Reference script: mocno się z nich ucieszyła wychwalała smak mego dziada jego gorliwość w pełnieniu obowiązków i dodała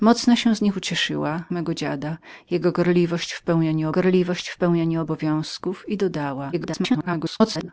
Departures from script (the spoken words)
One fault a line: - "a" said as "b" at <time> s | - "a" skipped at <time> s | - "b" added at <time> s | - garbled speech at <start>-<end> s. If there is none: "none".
- "wychwalała smak" skipped at 1.4 s
- "gorliwość w pełnieniu" added at 3.9 s
- garbled speech at 6.5-7.7 s